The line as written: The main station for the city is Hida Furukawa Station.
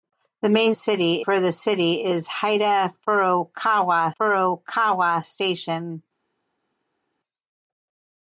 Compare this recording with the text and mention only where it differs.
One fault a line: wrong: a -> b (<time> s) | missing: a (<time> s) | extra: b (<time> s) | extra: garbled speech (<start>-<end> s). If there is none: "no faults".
wrong: station -> city (0.7 s)
extra: Furukawa (4.2 s)